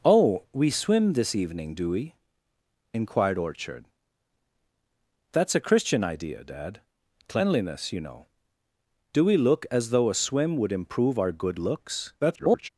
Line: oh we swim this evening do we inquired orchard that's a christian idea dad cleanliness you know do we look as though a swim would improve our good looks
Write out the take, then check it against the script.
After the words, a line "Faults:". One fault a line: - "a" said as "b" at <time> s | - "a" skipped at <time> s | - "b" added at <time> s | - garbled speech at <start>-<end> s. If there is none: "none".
oh we swim this evening do we inquired orchard that's a christian idea dad cleanliness you know do we look as though a swim would improve our good looks [garbled]
Faults:
- garbled speech at 12.2-12.7 s